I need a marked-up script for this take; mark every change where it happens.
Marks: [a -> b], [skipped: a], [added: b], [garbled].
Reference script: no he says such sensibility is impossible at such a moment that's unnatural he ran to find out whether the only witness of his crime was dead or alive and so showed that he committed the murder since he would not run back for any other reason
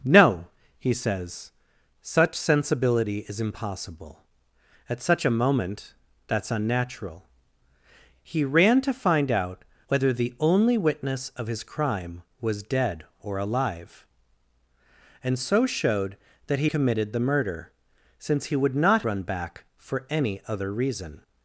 no he says such sensibility is impossible at such a moment that's unnatural he ran to find out whether the only witness of his crime was dead or alive and so showed that he committed the murder since he would not run back for any other reason